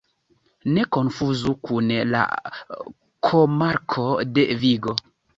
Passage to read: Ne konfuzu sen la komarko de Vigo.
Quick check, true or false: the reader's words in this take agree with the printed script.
false